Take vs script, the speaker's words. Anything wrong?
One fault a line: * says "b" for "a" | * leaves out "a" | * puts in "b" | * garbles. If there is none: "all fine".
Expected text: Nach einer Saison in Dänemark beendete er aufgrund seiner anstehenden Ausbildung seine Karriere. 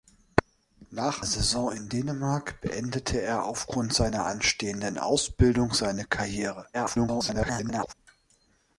* leaves out "einer"
* garbles